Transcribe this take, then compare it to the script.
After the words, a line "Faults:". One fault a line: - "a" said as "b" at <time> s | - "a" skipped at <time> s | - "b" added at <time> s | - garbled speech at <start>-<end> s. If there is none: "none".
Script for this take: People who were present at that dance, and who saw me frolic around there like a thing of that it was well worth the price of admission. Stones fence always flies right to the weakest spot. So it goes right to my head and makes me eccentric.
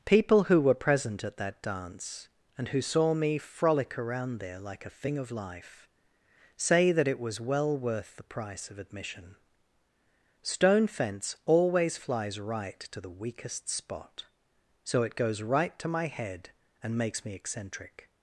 People who were present at that dance, and who saw me frolic around there like a thing of life, say that it was well worth the price of admission. Stone fence always flies right to the weakest spot. So it goes right to my head and makes me eccentric.
Faults:
- "life say" added at 5.3 s
- "Stones" said as "Stone" at 10.4 s